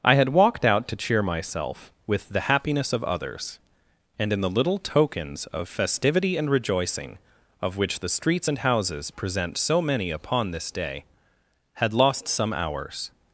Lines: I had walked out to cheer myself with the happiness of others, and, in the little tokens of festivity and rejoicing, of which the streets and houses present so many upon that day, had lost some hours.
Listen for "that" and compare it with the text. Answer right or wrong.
wrong